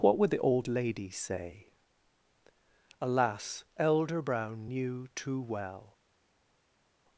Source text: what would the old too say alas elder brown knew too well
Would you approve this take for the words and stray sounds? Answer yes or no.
no